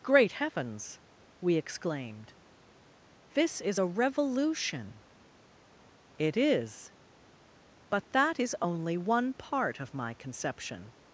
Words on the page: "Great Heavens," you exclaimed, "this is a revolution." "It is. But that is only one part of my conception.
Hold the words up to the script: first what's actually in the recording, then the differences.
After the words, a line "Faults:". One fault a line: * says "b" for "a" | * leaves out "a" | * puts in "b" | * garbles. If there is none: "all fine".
"Great Heavens," we exclaimed, "this is a revolution." "It is. But that is only one part of my conception.
Faults:
* says "we" for "you"